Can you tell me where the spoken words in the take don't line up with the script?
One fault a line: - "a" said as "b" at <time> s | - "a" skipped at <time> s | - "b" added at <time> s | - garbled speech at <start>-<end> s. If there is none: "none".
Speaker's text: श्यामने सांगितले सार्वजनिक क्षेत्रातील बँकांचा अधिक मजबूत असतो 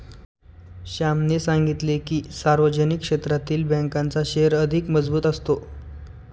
- "की" added at 2.0 s
- "शेअर" added at 4.2 s